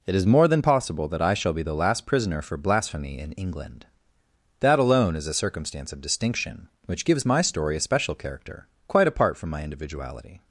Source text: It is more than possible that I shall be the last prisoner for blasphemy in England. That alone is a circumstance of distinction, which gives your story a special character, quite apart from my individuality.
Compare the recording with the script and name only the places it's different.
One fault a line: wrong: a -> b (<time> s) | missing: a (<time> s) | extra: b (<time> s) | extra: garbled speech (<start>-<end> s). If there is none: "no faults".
wrong: your -> my (7.2 s)